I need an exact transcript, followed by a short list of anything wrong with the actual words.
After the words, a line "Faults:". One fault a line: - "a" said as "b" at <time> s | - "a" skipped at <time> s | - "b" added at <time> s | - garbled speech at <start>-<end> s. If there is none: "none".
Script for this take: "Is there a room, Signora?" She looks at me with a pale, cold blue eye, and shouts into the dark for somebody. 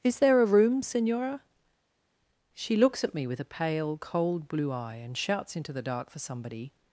"Is there a room, Signora?" She looks at me with a pale, cold blue eye, and shouts into the dark for somebody.
Faults:
none